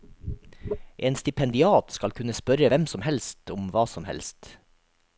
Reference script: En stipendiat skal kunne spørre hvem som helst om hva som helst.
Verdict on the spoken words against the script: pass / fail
pass